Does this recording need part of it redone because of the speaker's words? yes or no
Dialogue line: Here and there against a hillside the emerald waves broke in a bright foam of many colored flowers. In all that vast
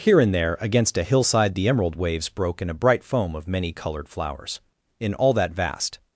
no